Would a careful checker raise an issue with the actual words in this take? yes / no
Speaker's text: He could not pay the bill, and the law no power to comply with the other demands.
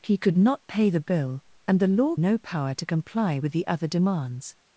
no